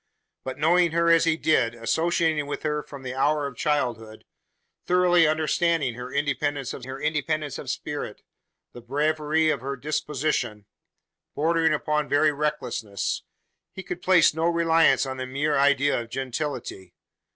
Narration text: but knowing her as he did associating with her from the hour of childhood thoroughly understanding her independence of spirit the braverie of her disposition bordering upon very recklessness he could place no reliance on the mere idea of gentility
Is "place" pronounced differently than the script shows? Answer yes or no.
no